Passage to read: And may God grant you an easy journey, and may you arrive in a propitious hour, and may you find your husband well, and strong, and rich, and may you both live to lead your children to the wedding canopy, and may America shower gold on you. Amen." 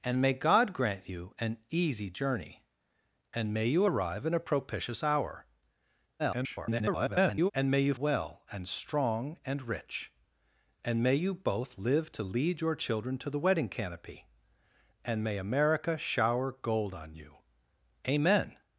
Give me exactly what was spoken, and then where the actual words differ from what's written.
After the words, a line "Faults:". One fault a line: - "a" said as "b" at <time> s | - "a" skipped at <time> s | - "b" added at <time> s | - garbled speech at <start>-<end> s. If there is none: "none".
And may God grant you an easy journey, and may you arrive in a propitious hour, [garbled] and may you well, and strong, and rich, and may you both live to lead your children to the wedding canopy, and may America shower gold on you. Amen."
Faults:
- garbled speech at 6.2-7.5 s
- "find your husband" skipped at 7.9 s